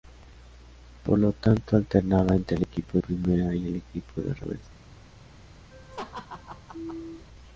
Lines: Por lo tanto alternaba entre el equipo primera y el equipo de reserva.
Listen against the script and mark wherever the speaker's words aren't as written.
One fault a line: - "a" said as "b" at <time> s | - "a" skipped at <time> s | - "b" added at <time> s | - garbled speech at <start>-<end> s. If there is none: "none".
none